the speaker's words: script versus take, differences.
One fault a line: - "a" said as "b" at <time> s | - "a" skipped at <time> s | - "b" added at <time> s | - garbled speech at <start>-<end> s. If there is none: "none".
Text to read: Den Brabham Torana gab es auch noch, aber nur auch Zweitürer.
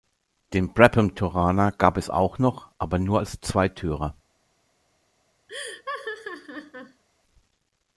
- "auch" said as "als" at 3.2 s